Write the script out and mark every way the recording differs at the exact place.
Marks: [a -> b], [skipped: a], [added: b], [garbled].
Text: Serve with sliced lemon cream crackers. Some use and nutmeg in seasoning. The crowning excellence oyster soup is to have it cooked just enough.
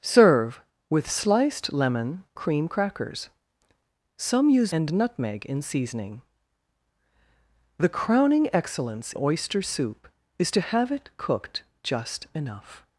Serve with sliced lemon cream crackers. Some use and nutmeg in seasoning. The crowning excellence oyster soup is to have it cooked just enough.